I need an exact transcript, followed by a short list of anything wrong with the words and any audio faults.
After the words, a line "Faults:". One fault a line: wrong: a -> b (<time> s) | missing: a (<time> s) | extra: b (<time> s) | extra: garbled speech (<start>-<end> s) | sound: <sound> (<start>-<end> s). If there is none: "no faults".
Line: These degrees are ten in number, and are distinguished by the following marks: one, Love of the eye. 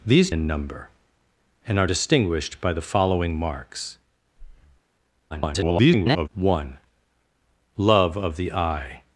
These in number, and are distinguished by the following marks: [garbled] one, Love of the eye.
Faults:
missing: degrees are ten (0.3 s)
sound: breath (4.4-4.8 s)
extra: garbled speech (5.3-6.3 s)